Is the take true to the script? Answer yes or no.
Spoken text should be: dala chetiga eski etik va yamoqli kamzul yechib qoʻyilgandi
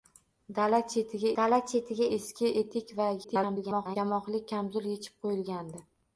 no